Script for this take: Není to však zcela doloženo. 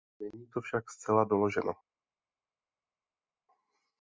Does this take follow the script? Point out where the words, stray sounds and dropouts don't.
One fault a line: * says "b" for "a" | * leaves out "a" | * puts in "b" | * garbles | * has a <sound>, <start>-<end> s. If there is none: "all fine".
all fine